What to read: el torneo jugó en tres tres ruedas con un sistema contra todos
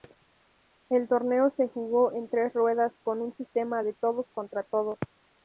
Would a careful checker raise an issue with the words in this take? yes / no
yes